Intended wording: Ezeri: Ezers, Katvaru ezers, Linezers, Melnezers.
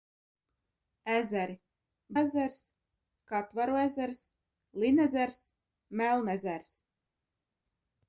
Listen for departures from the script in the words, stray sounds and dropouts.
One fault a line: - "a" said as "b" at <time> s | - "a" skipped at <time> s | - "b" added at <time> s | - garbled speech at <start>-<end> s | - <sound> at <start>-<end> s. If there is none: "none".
none